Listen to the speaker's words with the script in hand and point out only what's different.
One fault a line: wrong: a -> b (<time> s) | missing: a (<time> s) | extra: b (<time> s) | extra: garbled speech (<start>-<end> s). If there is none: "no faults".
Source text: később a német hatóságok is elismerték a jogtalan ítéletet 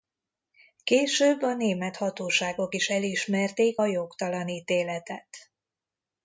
no faults